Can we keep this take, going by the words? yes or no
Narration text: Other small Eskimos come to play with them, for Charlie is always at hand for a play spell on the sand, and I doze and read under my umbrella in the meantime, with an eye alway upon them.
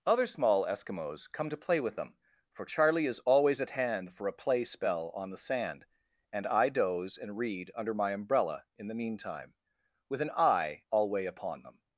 yes